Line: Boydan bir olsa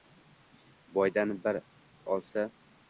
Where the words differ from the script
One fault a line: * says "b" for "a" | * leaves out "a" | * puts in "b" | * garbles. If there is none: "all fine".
all fine